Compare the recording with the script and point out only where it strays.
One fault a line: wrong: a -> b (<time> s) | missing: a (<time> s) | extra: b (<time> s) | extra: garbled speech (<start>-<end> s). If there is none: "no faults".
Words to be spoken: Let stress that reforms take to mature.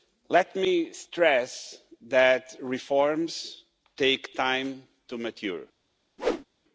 extra: me (0.6 s)
extra: time (4.3 s)